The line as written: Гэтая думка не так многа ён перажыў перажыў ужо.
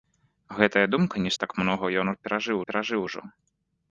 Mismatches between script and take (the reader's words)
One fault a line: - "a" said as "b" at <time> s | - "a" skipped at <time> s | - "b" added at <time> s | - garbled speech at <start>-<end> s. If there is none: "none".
none